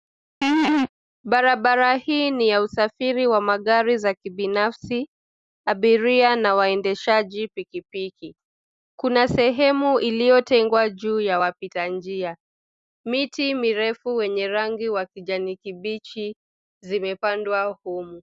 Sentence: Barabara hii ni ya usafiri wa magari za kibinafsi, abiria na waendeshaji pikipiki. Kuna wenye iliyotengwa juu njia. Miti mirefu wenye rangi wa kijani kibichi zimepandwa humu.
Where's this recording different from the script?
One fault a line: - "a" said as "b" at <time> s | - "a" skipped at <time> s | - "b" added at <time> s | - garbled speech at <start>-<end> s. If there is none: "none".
- "wenye" said as "sehemu" at 9.3 s
- "ya wapita" added at 11.2 s